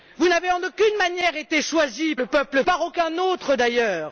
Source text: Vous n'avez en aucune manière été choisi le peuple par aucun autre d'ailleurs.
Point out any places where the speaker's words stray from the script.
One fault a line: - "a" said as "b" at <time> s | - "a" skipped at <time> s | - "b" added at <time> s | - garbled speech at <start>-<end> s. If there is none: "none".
none